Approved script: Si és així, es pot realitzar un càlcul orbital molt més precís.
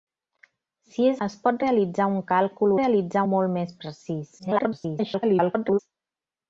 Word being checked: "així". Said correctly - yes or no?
no